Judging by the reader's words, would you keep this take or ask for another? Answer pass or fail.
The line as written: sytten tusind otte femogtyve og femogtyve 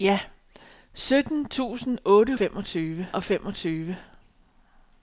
pass